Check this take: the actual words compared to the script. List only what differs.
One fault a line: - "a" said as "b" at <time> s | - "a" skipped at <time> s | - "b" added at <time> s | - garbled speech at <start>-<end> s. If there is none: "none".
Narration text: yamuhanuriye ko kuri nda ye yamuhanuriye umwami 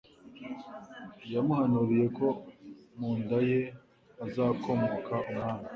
- "kuri" said as "mu" at 3.0 s
- "yamuhanuriye" said as "hazakomoka" at 4.2 s